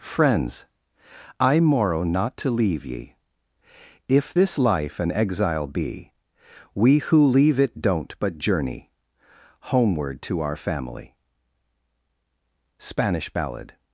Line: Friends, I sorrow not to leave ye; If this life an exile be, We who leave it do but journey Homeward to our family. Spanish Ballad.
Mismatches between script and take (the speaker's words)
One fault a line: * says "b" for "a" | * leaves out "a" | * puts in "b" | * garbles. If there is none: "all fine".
* says "morrow" for "sorrow"
* says "don't" for "do"